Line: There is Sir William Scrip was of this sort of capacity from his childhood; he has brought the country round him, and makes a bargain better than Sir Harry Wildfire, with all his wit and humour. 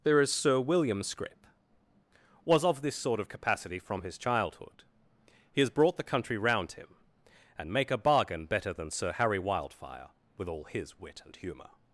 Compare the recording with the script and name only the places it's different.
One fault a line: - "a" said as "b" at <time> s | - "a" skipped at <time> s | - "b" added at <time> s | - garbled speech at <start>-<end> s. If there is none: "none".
- "makes" said as "make" at 7.7 s